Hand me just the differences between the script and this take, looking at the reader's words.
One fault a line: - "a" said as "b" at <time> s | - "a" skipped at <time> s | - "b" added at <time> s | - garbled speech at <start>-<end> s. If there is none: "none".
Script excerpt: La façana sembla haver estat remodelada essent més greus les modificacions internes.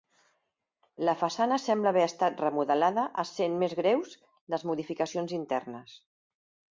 none